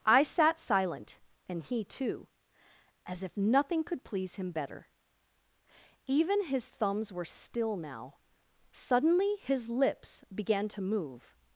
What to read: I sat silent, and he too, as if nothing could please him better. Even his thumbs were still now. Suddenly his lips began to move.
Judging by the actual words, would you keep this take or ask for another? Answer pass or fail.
pass